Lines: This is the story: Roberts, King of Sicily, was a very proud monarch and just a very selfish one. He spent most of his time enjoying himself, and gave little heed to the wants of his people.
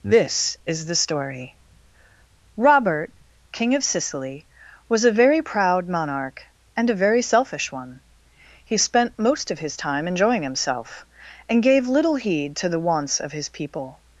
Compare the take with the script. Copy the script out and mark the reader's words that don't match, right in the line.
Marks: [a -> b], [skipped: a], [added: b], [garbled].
This is the story: [Roberts, -> Robert] King of Sicily, was a very proud monarch and [skipped: just] a very selfish one. He spent most of his time enjoying himself, and gave little heed to the wants of his people.